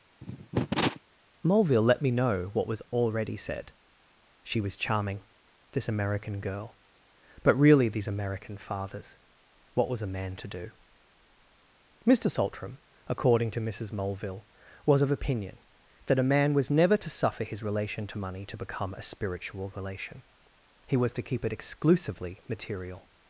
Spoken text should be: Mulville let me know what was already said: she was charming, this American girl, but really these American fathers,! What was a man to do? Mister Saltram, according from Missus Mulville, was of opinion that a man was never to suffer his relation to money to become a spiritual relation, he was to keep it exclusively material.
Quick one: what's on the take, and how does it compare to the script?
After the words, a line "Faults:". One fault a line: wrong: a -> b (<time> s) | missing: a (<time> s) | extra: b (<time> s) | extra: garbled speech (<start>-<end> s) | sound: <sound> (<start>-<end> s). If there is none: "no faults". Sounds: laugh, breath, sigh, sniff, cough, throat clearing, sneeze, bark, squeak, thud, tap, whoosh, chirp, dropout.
Mulville let me know what was already said: she was charming, this American girl, but really these American fathers,! What was a man to do? Mister Saltram, according to Missus Mulville, was of opinion that a man was never to suffer his relation to money to become a spiritual relation, he was to keep it exclusively material.
Faults:
sound: cough (0.2-1.0 s)
wrong: from -> to (13.5 s)